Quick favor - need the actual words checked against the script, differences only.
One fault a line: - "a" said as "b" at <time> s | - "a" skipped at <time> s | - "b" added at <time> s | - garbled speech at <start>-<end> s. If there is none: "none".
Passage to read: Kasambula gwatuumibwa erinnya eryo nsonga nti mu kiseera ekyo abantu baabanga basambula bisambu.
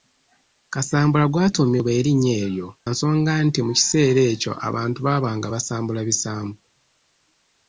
none